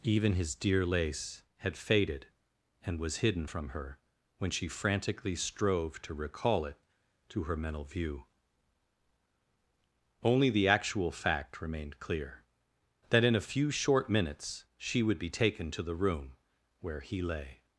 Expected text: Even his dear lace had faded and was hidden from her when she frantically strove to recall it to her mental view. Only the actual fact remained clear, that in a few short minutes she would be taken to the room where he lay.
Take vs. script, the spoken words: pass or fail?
pass